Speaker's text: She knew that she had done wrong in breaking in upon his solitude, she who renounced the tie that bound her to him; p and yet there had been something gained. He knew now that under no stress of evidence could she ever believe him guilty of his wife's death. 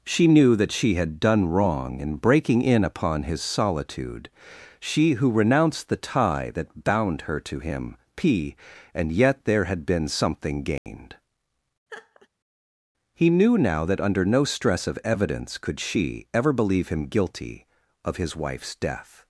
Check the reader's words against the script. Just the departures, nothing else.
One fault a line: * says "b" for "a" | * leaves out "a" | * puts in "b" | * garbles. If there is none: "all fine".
all fine